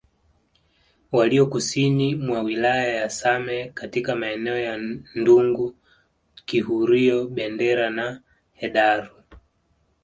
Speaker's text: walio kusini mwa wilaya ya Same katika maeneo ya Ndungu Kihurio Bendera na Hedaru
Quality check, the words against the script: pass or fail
pass